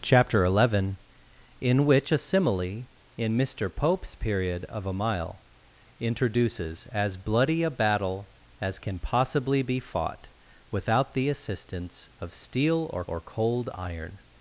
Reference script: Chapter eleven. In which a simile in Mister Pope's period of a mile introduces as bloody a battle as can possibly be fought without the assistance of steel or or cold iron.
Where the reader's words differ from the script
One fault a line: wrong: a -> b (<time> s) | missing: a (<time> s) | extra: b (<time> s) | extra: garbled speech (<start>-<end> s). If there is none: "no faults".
no faults